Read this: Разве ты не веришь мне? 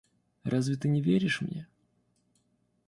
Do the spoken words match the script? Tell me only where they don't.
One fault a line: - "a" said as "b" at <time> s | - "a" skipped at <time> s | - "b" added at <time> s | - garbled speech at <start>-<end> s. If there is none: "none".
none